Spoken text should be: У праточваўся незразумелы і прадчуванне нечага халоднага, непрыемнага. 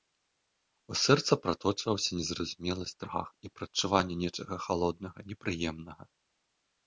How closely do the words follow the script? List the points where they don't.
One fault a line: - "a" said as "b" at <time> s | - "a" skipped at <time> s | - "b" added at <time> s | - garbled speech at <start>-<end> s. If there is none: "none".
- "сэрца" added at 1.0 s
- "страх" added at 2.9 s